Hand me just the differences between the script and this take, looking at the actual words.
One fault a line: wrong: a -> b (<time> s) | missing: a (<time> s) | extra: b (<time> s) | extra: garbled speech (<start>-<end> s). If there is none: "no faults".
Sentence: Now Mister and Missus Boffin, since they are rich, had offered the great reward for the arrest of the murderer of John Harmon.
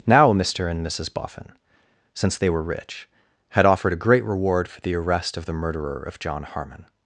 wrong: are -> were (2.5 s)
wrong: the -> a (3.9 s)